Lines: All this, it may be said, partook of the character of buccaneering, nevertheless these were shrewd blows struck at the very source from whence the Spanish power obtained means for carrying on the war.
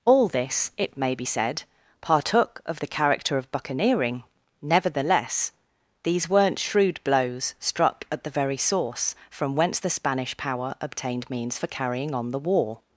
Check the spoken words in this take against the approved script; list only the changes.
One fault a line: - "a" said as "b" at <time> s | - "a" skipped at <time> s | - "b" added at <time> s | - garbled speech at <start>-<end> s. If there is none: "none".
- "were" said as "weren't" at 6.3 s